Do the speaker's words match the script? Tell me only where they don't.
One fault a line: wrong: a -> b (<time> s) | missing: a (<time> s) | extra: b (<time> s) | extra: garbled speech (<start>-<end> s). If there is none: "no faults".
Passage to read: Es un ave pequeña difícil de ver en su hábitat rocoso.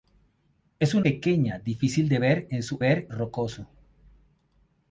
missing: ave (1.1 s)
wrong: hábitat -> ver (2.8 s)